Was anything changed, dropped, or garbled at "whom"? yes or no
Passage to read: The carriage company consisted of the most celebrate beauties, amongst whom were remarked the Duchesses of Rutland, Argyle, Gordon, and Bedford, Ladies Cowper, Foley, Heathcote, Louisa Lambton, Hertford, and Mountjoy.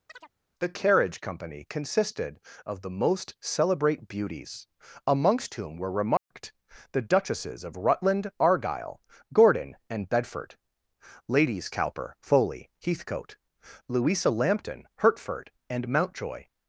no